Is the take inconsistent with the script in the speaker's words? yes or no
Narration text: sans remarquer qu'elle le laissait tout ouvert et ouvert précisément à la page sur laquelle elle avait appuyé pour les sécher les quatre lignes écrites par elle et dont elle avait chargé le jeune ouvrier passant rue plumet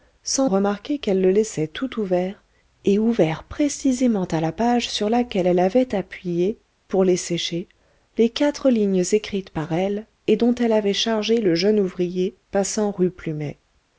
no